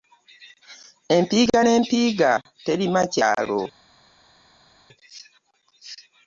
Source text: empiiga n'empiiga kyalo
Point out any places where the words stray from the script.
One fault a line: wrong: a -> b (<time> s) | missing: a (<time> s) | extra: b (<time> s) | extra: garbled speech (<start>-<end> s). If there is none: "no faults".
extra: terima (2.7 s)